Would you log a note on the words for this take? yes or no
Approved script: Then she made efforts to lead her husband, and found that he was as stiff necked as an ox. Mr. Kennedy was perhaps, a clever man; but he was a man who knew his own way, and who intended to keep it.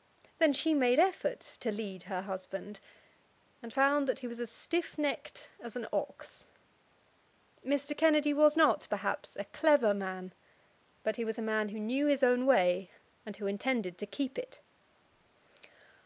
yes